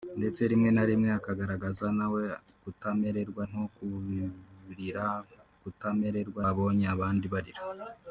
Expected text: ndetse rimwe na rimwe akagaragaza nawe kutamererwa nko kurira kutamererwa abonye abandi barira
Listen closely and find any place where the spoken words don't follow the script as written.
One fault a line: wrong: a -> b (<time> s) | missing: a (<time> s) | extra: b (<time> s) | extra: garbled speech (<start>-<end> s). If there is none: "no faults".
no faults